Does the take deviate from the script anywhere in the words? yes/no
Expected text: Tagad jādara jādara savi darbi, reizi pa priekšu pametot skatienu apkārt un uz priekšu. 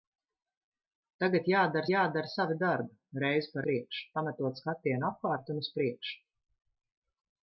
no